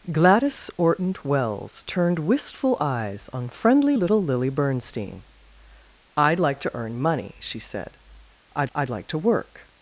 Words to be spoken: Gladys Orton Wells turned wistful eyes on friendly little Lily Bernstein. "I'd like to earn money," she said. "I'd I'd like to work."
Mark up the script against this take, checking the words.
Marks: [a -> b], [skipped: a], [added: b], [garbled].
Gladys Orton Wells turned wistful eyes on friendly little Lily Bernstein. "I'd like to earn money," she said. "I'd I'd like to work."